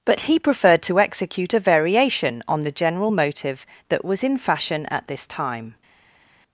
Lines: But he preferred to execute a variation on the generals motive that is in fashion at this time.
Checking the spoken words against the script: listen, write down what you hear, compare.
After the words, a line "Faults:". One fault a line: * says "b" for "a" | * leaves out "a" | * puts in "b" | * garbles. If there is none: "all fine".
But he preferred to execute a variation on the general motive that was in fashion at this time.
Faults:
* says "general" for "generals"
* says "was" for "is"